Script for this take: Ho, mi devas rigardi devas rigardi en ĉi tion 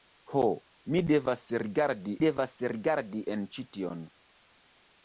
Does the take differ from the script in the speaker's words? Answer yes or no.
no